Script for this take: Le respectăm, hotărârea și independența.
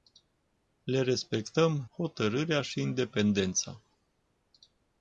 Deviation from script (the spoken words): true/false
false